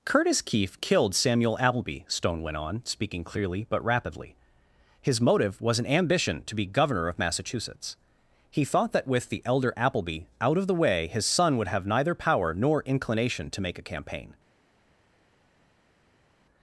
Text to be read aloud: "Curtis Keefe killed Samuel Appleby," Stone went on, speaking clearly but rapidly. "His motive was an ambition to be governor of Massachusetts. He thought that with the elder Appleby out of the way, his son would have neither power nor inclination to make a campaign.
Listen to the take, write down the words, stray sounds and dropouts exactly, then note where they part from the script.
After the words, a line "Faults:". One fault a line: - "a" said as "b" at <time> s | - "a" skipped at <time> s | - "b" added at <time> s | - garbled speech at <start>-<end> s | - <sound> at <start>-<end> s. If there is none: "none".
"Curtis Keefe killed Samuel Appleby," Stone went on, speaking clearly but rapidly. "His motive was an ambition to be governor of Massachusetts. He thought that with the elder Appleby out of the way, his son would have neither power nor inclination to make a campaign.
Faults:
none